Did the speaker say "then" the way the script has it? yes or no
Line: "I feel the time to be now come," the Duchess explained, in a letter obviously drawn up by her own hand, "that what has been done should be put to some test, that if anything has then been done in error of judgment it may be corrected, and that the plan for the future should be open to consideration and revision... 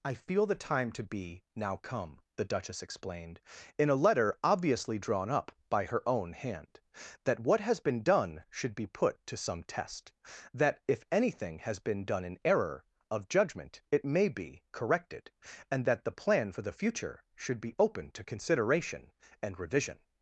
no